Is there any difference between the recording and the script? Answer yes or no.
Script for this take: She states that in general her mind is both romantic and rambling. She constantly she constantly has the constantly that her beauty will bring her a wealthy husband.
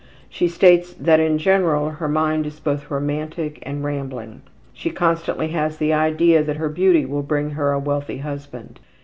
yes